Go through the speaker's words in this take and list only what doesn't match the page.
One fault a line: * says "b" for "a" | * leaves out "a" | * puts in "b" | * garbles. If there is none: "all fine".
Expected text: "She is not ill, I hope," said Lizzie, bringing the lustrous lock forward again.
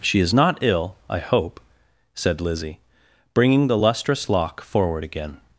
all fine